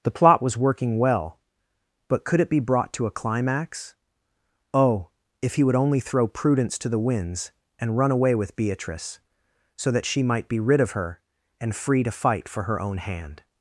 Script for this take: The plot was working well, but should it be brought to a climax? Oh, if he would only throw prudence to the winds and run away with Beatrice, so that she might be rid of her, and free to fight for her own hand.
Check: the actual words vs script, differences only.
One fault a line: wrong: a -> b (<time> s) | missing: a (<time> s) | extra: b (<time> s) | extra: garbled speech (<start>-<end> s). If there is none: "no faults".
wrong: should -> could (2.2 s)